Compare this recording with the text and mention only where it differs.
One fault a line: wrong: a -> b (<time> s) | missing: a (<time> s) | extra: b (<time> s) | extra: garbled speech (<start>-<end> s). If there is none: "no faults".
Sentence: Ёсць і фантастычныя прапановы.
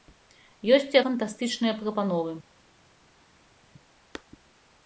no faults